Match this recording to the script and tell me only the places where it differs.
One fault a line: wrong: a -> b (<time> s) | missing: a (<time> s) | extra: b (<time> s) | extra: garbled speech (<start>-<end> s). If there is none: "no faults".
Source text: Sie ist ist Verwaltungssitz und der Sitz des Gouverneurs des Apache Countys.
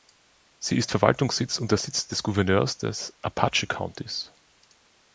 missing: ist (0.9 s)